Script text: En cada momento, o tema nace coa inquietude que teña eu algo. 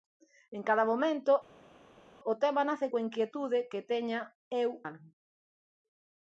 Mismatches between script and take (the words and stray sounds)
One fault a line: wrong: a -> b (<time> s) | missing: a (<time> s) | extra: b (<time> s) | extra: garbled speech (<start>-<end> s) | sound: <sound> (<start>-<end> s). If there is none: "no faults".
no faults